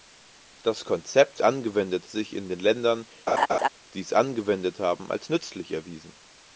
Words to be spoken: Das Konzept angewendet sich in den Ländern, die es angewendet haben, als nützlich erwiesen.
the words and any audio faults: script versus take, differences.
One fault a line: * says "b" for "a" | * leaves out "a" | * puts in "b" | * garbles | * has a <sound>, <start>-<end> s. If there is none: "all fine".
* has a laugh, 3.3-3.7 s